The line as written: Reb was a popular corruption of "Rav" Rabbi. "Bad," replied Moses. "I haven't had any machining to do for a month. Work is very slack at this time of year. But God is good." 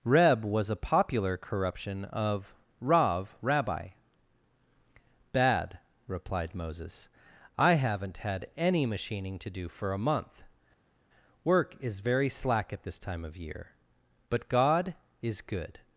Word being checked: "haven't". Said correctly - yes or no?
yes